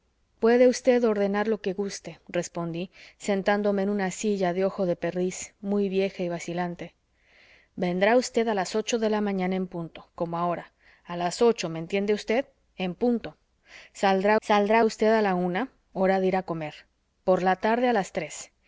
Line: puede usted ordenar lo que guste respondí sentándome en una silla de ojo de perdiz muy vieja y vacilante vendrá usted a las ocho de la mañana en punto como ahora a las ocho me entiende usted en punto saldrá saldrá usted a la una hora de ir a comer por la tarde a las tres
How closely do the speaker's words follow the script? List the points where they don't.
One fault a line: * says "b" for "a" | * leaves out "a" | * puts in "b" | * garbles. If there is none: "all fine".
all fine